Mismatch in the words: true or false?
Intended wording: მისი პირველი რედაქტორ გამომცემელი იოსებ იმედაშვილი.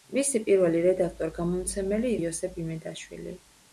false